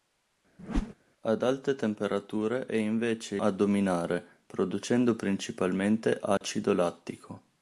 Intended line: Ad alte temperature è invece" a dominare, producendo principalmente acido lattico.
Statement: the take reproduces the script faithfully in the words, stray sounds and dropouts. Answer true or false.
false